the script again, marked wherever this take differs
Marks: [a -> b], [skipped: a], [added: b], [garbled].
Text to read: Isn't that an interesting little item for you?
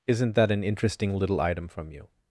Isn't that an interesting little item [for -> from] you?